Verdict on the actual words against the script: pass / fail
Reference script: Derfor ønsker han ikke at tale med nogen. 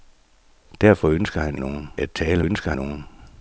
fail